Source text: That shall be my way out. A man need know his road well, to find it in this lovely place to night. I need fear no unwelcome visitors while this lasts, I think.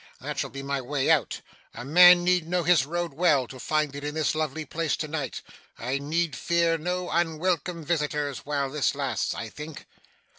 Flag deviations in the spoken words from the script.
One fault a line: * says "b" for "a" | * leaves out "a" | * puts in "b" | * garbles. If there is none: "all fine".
all fine